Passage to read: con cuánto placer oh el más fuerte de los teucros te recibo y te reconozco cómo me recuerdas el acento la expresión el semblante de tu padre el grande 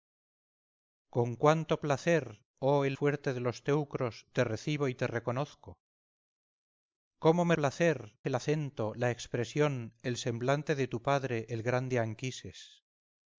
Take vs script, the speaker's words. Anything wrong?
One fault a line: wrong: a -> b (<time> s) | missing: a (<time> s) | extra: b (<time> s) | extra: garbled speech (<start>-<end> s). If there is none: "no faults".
missing: más (3.0 s)
wrong: recuerdas -> placer (7.5 s)